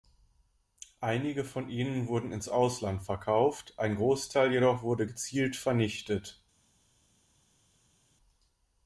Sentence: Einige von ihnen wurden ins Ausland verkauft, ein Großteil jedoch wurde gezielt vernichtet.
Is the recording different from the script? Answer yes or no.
no